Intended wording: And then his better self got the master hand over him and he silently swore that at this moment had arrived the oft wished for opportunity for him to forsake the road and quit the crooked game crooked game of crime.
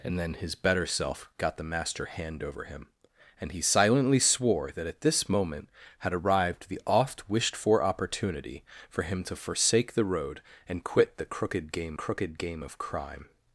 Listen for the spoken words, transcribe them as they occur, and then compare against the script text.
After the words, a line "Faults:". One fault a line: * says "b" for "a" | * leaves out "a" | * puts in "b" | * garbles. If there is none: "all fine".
And then his better self got the master hand over him and he silently swore that at this moment had arrived the oft wished for opportunity for him to forsake the road and quit the crooked game crooked game of crime.
Faults:
all fine